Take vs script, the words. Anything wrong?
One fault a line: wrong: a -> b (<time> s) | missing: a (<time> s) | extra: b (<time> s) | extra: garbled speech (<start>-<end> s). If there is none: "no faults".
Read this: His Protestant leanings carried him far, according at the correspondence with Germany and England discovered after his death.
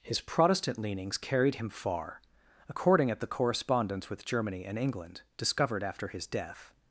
no faults